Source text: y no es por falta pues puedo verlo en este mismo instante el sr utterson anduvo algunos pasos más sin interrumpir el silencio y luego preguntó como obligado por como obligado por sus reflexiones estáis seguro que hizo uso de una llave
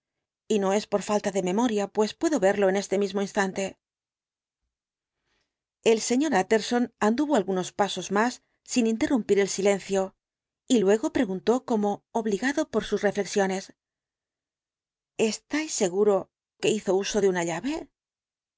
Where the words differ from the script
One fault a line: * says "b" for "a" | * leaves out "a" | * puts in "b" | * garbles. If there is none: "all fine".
* puts in "de memoria"
* leaves out "como obligado por"